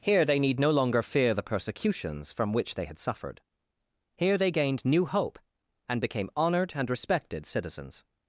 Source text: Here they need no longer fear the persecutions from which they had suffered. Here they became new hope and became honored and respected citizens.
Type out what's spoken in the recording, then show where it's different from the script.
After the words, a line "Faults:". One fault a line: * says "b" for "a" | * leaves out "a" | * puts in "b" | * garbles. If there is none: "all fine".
Here they need no longer fear the persecutions from which they had suffered. Here they gained new hope and became honored and respected citizens.
Faults:
* says "gained" for "became"